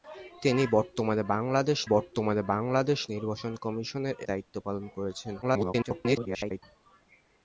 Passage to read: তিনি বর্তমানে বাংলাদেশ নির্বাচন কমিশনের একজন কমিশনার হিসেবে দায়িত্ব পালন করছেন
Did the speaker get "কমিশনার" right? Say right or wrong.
wrong